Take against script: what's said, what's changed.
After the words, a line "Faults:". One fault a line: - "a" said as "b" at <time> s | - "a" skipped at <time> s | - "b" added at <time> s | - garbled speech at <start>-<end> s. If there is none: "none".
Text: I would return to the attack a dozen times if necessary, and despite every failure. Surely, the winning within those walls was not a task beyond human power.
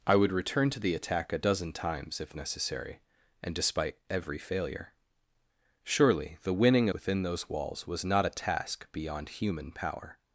I would return to the attack a dozen times if necessary, and despite every failure. Surely, the winning within those walls was not a task beyond human power.
Faults:
none